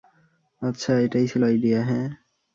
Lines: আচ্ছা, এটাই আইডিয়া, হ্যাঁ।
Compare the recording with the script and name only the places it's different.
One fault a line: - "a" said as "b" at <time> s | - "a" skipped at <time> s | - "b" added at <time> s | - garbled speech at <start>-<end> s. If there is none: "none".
- "ছিল" added at 1.2 s